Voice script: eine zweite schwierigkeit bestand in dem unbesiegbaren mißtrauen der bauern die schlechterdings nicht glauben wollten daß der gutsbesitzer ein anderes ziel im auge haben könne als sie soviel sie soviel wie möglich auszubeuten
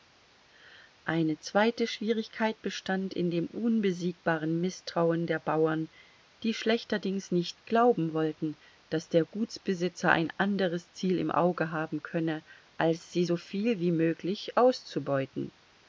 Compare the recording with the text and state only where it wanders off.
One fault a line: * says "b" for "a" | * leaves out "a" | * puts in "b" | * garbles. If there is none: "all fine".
* leaves out "sie soviel"